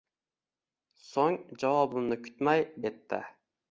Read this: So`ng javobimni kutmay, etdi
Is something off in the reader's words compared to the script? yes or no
no